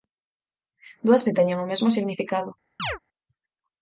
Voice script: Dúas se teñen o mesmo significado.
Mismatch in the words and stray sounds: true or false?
true